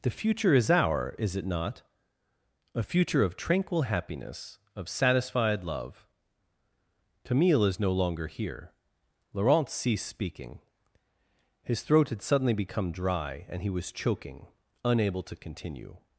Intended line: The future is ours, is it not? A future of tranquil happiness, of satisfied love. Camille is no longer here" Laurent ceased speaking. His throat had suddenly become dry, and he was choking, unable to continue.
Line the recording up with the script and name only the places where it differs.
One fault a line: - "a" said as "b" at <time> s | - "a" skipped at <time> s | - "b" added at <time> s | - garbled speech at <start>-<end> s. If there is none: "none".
- "ours" said as "our" at 0.7 s